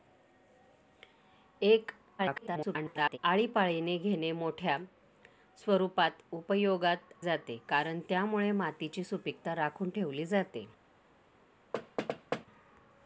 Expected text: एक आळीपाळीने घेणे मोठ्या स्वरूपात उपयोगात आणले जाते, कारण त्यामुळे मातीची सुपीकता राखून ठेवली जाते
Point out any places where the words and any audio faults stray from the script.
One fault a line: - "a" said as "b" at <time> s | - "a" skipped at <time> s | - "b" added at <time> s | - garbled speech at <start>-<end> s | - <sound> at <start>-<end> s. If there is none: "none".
- garbled speech at 2.2-3.2 s
- "आणले" skipped at 7.1 s
- thud at 11.7-12.5 s